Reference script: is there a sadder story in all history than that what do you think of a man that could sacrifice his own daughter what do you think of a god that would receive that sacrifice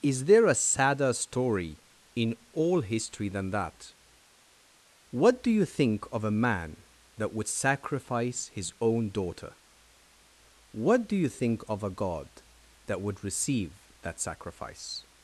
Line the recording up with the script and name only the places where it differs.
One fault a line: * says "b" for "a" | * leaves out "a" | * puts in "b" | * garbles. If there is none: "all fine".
* says "would" for "could"